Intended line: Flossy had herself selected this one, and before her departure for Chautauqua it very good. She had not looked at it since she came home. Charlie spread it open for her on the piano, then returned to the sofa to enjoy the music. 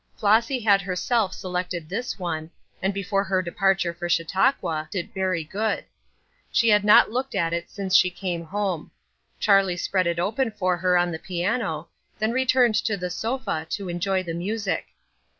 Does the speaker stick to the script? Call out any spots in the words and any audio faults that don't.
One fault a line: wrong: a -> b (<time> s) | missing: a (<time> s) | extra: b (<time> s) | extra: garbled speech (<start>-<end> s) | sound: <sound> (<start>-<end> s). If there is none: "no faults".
no faults